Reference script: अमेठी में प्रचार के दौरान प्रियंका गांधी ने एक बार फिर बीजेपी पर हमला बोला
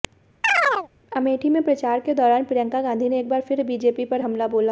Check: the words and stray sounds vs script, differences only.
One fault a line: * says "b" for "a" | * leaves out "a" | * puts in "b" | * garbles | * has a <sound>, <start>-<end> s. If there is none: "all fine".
* has a chirp, 0.4-0.9 s